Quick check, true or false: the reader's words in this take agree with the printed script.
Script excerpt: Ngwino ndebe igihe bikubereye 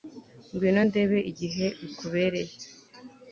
true